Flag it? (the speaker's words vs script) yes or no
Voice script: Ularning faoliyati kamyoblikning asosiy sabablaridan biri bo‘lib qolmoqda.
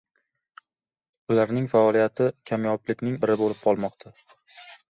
yes